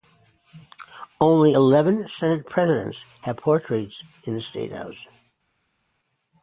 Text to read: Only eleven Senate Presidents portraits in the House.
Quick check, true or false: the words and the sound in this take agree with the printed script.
false